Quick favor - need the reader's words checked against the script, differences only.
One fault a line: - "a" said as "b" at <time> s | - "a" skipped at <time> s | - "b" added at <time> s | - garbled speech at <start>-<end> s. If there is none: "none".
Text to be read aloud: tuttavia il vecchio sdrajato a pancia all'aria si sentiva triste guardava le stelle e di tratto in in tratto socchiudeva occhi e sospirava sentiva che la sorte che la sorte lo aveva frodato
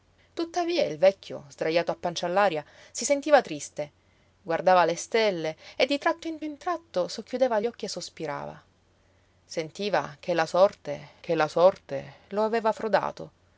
none